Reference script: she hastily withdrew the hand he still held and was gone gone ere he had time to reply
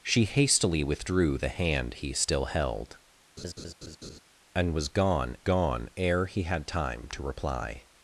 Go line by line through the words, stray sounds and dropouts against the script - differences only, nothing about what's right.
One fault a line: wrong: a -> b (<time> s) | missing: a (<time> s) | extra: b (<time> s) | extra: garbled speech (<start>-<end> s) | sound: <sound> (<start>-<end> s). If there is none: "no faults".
sound: laugh (3.4-4.2 s)